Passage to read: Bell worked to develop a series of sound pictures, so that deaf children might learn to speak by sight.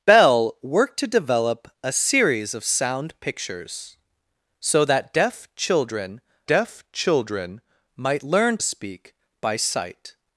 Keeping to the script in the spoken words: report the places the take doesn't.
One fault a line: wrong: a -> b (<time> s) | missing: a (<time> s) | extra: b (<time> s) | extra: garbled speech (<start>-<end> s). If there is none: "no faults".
extra: deaf children (6.5 s)
missing: to (8.6 s)